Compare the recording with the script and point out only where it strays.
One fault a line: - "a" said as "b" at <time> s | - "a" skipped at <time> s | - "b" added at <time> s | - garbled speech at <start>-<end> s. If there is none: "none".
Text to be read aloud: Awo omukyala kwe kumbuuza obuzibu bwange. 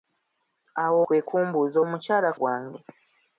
- "omukyala" skipped at 1.0 s
- "obuzibu" said as "omukyala" at 1.8 s